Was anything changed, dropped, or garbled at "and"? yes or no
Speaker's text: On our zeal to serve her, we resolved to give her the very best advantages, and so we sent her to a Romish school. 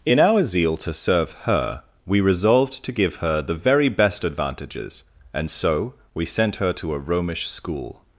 no